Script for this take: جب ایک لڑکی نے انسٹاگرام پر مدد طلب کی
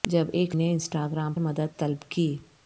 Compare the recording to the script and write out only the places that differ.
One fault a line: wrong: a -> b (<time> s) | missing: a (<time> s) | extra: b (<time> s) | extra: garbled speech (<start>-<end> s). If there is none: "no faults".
missing: لڑکی (0.6 s)
missing: پر (1.3 s)